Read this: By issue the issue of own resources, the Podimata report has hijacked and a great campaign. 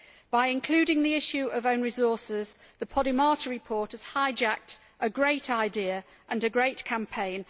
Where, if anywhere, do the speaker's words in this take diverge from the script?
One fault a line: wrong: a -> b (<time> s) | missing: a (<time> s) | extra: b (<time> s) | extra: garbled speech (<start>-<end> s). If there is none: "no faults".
wrong: issue -> including (0.5 s)
extra: a great idea (5.0 s)